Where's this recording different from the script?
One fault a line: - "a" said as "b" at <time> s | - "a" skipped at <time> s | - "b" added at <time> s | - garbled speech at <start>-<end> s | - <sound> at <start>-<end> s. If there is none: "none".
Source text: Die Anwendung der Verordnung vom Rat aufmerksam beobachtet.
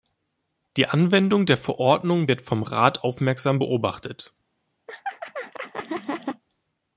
- "wird" added at 2.3 s
- laugh at 4.9-6.4 s